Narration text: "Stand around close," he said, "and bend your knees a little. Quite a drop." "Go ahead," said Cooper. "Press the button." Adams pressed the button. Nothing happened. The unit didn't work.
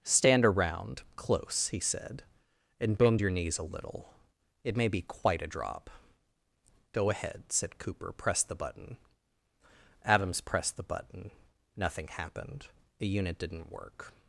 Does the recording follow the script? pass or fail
fail